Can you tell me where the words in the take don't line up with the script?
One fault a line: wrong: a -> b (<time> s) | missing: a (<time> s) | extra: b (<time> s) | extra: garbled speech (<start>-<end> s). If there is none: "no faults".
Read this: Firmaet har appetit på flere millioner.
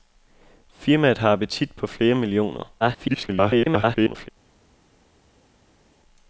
extra: garbled speech (2.8-4.3 s)